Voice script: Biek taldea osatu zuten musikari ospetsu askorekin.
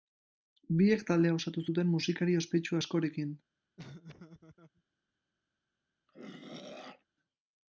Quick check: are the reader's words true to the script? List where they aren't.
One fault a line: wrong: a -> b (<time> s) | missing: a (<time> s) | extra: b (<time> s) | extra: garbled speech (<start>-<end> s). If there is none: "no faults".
no faults